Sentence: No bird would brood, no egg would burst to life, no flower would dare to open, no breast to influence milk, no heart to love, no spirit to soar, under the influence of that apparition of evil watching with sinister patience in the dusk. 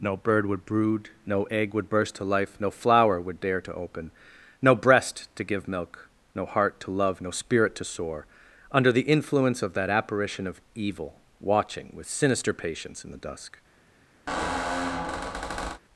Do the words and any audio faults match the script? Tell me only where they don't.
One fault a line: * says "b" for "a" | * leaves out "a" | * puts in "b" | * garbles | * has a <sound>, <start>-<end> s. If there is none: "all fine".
* says "give" for "influence"
* has a squeak, 14.3-15.8 s